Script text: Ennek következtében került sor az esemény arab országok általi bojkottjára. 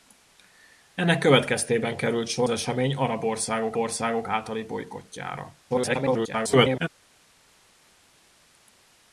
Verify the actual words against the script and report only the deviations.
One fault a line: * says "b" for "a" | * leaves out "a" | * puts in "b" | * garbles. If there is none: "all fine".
* leaves out "az"
* puts in "országok"
* garbles